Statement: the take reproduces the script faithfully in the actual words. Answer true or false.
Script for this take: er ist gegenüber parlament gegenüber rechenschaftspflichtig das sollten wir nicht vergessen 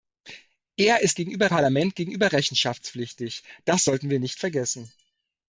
true